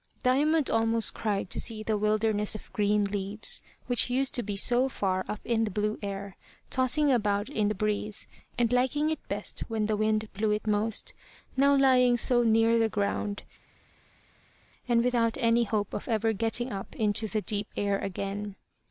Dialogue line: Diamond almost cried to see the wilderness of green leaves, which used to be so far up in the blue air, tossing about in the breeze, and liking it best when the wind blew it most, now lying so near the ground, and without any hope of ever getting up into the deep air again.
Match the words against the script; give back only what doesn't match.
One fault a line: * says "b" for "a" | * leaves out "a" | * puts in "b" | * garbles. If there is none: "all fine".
all fine